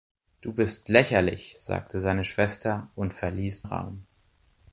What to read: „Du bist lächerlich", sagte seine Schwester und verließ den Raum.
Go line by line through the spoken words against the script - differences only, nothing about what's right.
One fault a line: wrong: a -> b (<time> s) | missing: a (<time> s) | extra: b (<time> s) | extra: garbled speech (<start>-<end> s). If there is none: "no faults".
missing: den (3.6 s)